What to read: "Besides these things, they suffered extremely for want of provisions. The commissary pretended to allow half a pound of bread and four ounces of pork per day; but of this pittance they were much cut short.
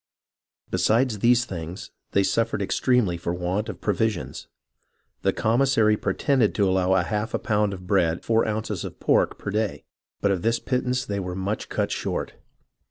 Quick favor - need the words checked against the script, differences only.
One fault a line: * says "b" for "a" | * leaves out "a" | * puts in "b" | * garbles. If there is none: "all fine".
* leaves out "and"